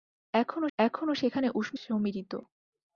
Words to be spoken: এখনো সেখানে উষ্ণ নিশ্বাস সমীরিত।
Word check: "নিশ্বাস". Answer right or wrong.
wrong